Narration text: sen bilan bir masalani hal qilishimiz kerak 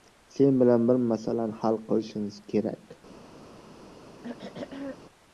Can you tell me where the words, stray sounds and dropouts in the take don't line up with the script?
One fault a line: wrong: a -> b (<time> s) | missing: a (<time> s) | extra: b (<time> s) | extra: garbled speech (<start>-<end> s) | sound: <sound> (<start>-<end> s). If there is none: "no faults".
sound: throat clearing (4.2-5.0 s)